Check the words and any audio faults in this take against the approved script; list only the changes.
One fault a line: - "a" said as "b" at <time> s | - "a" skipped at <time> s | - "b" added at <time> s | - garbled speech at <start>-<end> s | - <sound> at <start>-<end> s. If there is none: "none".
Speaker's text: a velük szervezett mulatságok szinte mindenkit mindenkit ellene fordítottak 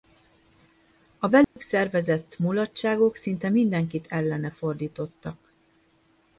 - dropout at 1.4-1.6 s
- "mindenkit" skipped at 4.1 s